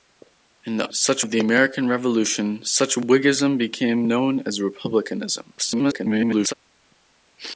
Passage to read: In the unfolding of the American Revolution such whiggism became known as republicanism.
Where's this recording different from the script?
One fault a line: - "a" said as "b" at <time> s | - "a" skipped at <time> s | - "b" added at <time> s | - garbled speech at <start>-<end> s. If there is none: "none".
- "unfolding" said as "such" at 0.9 s
- garbled speech at 5.6-6.5 s